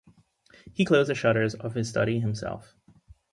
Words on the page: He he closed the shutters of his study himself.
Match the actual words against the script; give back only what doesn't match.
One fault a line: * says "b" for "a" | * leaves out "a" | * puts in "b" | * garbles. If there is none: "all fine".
* leaves out "he"